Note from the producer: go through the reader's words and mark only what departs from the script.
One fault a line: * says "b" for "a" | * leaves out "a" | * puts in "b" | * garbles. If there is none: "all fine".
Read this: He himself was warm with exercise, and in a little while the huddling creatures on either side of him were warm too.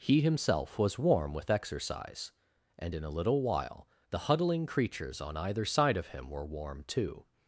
all fine